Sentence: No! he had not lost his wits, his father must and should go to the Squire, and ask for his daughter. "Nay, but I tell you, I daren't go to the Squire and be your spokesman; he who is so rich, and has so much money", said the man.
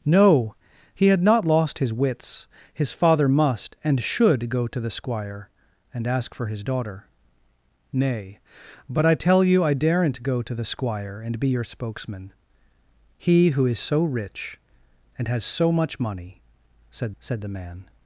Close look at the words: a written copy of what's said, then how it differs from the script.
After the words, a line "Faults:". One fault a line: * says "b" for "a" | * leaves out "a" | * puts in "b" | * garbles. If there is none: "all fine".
No! he had not lost his wits, his father must and should go to the Squire, and ask for his daughter. "Nay, but I tell you, I daren't go to the Squire and be your spokesman; he who is so rich, and has so much money", said said the man.
Faults:
* puts in "said"